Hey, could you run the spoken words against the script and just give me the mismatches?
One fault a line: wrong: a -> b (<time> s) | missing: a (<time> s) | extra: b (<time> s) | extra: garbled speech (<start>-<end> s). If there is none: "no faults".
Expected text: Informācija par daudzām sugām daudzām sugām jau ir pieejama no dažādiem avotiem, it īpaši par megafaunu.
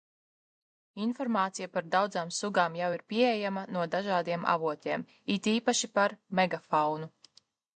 missing: daudzām sugām (2.7 s)